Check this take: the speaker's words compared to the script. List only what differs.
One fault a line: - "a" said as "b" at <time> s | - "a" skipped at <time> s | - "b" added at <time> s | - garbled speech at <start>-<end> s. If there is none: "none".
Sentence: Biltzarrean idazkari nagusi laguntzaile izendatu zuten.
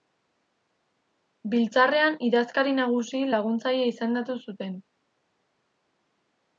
none